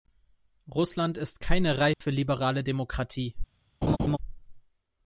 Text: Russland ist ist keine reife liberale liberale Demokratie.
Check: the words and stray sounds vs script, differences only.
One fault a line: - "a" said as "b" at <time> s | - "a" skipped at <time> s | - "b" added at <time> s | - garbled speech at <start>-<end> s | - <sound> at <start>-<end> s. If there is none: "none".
- "ist" skipped at 1.4 s
- dropout at 1.9-2.0 s
- "liberale" skipped at 2.6 s
- laugh at 3.8-4.2 s